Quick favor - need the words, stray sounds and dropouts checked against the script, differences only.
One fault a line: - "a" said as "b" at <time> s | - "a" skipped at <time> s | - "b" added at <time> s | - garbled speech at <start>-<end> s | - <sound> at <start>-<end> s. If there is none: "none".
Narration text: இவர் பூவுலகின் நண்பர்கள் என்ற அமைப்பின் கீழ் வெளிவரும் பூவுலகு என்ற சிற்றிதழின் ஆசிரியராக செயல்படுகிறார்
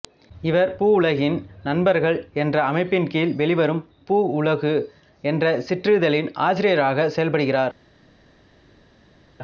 none